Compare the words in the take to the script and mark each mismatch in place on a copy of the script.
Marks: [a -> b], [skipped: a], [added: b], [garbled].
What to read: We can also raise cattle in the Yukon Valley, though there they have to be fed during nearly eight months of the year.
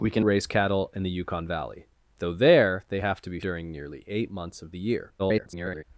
We can [skipped: also] raise cattle in the Yukon Valley, though there they have to be [skipped: fed] during nearly eight months of the year. [garbled]